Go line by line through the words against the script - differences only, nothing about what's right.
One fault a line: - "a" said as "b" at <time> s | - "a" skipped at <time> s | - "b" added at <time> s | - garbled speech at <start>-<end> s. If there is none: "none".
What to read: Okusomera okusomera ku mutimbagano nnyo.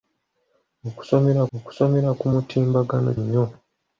none